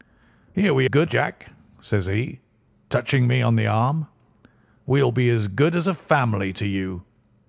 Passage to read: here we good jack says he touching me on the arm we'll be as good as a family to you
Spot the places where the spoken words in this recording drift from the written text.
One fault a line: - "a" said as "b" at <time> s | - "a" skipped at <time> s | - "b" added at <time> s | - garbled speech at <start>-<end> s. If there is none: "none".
none